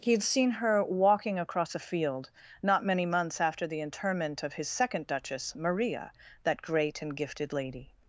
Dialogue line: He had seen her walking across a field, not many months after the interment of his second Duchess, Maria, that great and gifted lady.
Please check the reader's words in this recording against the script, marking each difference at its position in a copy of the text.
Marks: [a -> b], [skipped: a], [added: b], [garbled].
He had seen her walking across a field, not many months after the interment of his second Duchess, Maria, that great and gifted lady.